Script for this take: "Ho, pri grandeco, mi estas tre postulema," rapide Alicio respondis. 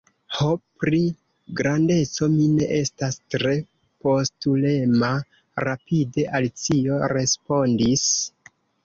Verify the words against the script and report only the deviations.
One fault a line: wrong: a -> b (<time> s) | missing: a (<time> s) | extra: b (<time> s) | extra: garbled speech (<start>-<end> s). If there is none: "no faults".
extra: ne (2.5 s)